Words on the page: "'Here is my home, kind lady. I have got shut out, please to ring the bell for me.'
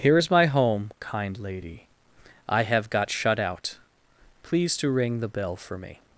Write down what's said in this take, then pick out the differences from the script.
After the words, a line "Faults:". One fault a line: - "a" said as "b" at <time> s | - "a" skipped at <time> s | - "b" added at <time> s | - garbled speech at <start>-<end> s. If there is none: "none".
"'Here is my home, kind lady. I have got shut out, please to ring the bell for me.'
Faults:
none